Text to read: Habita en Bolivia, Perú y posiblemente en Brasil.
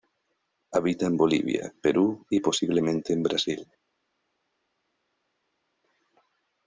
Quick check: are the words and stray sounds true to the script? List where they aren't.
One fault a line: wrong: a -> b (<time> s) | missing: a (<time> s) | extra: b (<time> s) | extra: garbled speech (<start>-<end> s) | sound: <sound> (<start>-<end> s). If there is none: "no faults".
no faults